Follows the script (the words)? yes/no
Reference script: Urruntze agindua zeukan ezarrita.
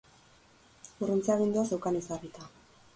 yes